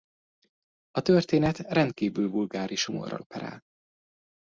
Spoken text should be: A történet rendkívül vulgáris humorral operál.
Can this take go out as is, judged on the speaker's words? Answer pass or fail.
pass